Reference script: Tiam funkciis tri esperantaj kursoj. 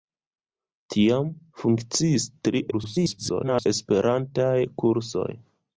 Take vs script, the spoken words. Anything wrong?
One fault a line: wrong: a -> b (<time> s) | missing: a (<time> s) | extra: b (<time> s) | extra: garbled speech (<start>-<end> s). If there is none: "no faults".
extra: garbled speech (2.7-3.7 s)